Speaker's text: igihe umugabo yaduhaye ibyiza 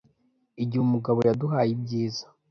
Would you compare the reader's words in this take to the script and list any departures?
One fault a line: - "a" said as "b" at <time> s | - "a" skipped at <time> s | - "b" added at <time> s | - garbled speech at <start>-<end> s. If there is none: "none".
none